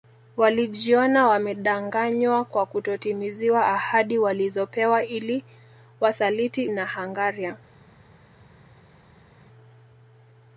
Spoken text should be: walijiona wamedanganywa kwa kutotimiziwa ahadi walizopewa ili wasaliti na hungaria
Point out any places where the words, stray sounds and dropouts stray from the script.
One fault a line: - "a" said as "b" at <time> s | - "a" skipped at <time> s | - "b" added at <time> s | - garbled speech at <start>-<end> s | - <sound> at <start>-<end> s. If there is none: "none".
none